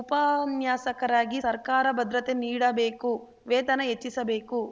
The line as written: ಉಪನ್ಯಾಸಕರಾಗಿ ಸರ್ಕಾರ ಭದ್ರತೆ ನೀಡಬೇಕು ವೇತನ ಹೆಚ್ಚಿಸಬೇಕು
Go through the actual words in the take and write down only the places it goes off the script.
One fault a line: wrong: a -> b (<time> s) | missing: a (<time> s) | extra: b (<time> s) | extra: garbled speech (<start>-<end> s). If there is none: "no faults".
no faults